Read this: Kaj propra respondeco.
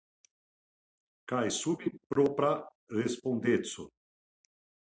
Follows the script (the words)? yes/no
no